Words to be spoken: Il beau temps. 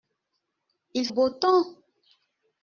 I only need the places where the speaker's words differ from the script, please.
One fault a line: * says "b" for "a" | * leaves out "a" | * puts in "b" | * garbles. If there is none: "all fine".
all fine